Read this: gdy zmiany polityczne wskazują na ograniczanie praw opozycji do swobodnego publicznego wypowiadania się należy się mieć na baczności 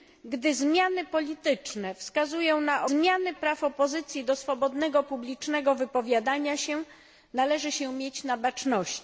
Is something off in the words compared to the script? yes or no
yes